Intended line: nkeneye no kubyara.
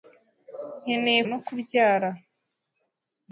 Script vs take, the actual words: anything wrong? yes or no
no